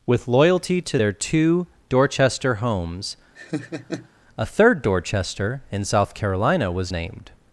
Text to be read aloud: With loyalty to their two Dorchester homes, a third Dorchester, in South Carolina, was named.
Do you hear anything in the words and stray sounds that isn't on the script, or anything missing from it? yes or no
yes